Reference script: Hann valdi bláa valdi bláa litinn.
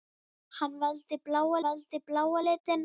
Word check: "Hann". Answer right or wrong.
right